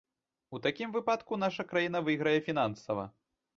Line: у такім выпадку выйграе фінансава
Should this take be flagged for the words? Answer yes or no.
yes